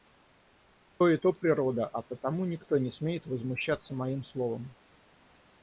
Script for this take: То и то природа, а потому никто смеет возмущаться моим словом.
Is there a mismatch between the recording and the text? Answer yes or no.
yes